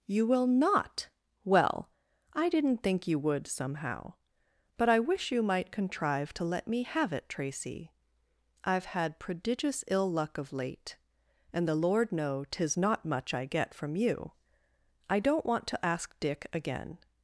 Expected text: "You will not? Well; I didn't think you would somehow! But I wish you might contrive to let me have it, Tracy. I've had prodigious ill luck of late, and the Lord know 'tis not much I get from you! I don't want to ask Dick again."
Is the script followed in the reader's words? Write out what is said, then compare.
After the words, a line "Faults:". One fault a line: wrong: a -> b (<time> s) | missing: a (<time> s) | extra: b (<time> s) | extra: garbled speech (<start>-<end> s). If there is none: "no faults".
"You will not? Well; I didn't think you would somehow! But I wish you might contrive to let me have it, Tracy. I've had prodigious ill luck of late, and the Lord know 'tis not much I get from you! I don't want to ask Dick again."
Faults:
no faults